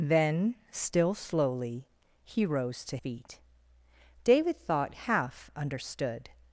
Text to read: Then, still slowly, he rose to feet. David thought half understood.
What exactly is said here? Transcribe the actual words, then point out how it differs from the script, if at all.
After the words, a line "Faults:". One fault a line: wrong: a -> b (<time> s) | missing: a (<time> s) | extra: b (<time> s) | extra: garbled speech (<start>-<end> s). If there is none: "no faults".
Then, still slowly, he rose to feet. David thought half understood.
Faults:
no faults